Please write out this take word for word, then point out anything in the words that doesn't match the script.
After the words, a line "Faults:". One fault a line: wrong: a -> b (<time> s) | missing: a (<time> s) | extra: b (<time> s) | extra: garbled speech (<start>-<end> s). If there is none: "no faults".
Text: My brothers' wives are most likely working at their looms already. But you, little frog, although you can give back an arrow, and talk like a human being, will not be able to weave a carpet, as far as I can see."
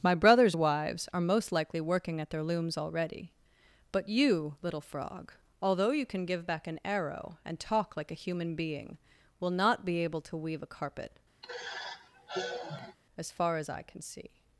My brothers' wives are most likely working at their looms already. But you, little frog, although you can give back an arrow, and talk like a human being, will not be able to weave a carpet, as far as I can see."
Faults:
no faults